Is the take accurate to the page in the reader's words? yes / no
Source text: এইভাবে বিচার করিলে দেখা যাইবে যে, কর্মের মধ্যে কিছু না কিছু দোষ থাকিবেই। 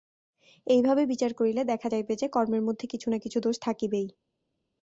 yes